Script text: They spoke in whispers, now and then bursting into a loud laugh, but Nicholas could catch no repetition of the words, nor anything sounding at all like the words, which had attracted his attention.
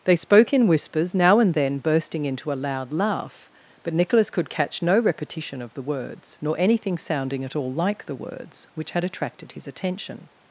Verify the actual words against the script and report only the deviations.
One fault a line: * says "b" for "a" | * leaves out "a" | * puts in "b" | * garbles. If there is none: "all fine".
all fine